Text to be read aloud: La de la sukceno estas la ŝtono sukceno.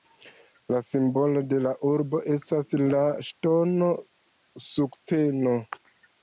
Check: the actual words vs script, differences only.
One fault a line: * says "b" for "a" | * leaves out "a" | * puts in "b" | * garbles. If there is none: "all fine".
* puts in "simbolo"
* says "urbo" for "sukceno"